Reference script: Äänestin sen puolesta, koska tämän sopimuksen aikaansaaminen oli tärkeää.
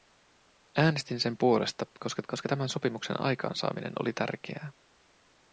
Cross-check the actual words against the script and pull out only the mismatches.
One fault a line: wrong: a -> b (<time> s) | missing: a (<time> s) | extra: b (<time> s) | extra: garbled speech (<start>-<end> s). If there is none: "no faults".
extra: koska (2.3 s)